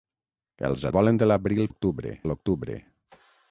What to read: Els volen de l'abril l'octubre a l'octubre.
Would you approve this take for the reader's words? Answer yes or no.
yes